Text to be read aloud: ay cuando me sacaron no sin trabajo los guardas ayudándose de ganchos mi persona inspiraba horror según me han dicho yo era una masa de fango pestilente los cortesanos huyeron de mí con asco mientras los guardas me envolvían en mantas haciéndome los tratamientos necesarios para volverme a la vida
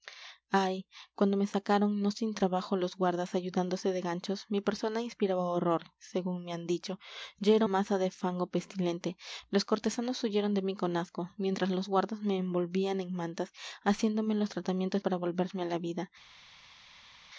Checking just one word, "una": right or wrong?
wrong